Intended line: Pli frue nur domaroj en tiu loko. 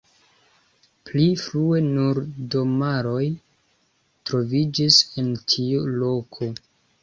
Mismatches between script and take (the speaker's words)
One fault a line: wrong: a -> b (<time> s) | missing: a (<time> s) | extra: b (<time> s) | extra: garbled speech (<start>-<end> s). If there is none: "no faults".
extra: troviĝis (4.3 s)